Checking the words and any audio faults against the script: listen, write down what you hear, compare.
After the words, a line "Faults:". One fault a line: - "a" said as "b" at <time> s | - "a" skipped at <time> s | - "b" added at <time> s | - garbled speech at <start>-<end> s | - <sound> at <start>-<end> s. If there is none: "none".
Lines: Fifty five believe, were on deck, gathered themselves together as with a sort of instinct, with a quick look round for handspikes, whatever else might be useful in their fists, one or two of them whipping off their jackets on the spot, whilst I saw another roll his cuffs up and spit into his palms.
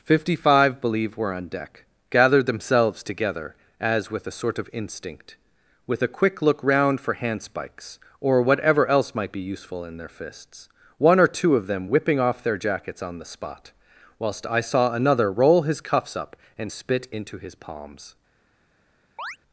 Fifty five believe, were on deck, gathered themselves together as with a sort of instinct, with a quick look round for handspikes, or whatever else might be useful in their fists, one or two of them whipping off their jackets on the spot, whilst I saw another roll his cuffs up and spit into his palms.
Faults:
- "or" added at 8.2 s
- chirp at 19.2-19.4 s